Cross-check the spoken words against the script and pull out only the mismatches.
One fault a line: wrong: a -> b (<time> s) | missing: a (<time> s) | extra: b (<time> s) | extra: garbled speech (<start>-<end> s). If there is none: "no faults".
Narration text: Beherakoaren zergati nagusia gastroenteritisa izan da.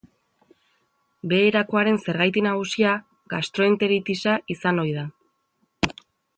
extra: ohi (4.9 s)